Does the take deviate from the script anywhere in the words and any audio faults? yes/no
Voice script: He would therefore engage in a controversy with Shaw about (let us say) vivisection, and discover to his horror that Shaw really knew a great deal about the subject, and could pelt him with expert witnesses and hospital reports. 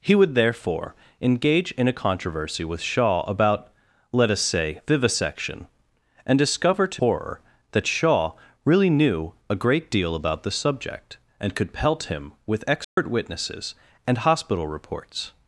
yes